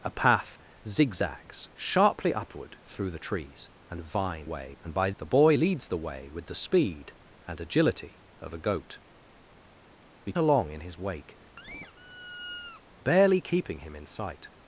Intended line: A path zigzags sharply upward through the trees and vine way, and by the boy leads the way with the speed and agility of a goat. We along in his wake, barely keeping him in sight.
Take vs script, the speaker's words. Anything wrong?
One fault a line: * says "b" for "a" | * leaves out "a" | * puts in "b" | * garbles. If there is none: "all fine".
all fine